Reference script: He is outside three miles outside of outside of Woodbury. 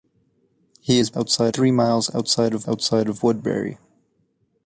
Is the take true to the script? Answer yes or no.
yes